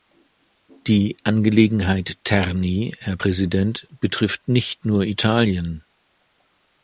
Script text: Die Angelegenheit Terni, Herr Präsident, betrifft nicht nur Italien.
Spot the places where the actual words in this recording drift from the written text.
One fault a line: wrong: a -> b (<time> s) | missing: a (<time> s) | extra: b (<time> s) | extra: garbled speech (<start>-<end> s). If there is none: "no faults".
no faults